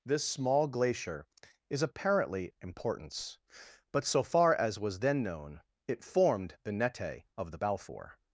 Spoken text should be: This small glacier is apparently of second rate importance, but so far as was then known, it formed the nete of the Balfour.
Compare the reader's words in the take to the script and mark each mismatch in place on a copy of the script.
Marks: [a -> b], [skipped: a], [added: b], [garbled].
This small glacier is apparently [skipped: of second rate] importance, but so far as was then known, it formed the nete of the Balfour.